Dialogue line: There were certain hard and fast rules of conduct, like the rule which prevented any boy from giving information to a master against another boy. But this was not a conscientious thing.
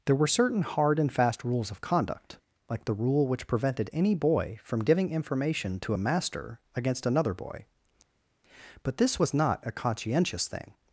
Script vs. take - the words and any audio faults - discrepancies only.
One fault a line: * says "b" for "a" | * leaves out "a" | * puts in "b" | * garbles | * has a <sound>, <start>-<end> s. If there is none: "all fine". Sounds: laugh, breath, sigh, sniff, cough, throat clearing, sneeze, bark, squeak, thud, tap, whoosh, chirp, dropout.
all fine